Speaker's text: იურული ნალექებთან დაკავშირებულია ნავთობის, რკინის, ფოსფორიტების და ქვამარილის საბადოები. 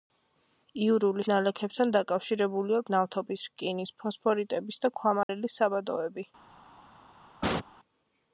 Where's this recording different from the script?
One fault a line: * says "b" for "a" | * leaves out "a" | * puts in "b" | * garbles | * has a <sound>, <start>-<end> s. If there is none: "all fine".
* has a dropout, 5.2-5.3 s
* has a sneeze, 7.4-7.7 s